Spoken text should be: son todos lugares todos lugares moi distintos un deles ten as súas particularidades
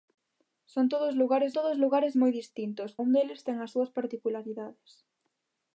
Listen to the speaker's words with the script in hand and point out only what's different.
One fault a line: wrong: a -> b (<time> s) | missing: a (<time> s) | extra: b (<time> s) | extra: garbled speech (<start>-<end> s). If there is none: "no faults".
no faults